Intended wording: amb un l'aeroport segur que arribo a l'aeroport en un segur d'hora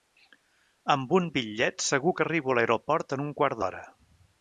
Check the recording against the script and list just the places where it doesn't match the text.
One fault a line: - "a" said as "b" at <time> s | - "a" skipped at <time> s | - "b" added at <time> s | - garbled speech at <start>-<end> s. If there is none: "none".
- "l'aeroport" said as "bitllet" at 1.4 s
- "segur" said as "quart" at 3.4 s